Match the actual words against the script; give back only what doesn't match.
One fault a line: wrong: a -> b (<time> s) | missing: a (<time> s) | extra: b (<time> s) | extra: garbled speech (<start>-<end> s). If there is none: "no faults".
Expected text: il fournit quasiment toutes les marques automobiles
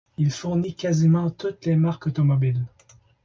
no faults